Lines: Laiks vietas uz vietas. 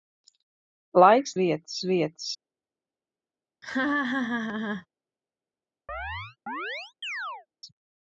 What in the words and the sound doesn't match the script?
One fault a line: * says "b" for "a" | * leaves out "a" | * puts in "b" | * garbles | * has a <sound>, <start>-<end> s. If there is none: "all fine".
* has a laugh, 3.6-4.9 s
* has a chirp, 5.9-7.5 s